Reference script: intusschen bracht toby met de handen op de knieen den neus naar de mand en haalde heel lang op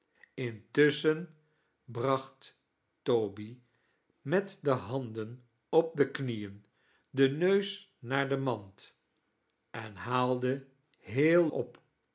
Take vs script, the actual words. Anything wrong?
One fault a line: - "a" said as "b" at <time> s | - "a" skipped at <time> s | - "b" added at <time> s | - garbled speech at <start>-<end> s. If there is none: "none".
- "lang" skipped at 11.5 s